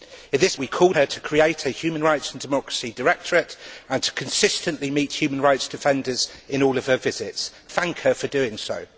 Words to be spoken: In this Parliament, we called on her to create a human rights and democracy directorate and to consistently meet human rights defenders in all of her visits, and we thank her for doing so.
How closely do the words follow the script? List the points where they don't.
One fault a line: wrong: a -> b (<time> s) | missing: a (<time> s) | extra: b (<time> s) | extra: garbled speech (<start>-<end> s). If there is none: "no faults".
missing: Parliament (0.6 s)
missing: on (1.0 s)
missing: and we (7.5 s)